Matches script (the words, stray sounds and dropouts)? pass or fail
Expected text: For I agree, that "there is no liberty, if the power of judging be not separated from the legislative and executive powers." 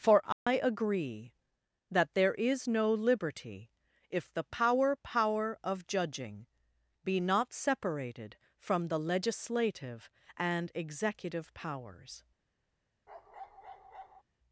fail